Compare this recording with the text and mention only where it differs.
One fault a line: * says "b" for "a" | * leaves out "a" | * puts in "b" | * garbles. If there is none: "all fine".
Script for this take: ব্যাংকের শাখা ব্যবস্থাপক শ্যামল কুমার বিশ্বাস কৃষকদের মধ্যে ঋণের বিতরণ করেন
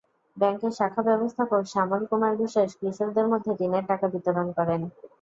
* puts in "টাকা"